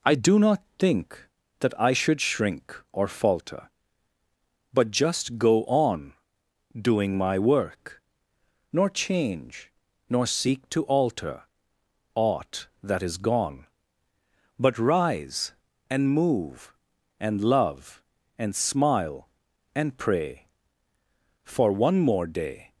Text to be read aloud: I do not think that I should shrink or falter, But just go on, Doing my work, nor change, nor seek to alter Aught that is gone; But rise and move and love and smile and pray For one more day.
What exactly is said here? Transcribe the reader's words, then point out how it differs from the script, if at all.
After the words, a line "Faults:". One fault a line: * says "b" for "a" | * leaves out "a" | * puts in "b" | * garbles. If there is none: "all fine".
I do not think that I should shrink or falter, But just go on, Doing my work, nor change, nor seek to alter Aught that is gone; But rise and move and love and smile and pray For one more day.
Faults:
all fine